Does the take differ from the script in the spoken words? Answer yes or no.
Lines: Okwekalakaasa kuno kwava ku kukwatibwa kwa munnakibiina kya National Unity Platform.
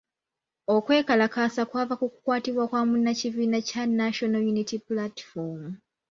yes